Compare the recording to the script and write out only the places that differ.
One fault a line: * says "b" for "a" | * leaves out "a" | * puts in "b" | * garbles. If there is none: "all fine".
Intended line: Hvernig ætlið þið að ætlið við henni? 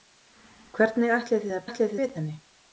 all fine